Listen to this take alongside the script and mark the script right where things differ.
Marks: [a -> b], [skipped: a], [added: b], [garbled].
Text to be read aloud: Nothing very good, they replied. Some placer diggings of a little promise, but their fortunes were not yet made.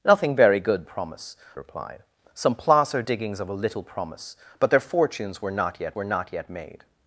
Nothing very good, [they -> promise] replied. Some placer diggings of a little promise, but their fortunes were not yet [added: were not yet] made.